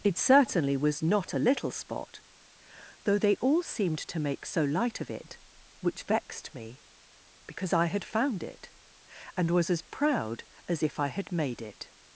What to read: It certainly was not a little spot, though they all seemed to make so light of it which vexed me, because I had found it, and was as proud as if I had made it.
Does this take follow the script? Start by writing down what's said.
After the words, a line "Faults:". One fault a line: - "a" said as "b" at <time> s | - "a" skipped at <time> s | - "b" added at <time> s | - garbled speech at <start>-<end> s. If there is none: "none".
It certainly was not a little spot, though they all seemed to make so light of it which vexed me, because I had found it, and was as proud as if I had made it.
Faults:
none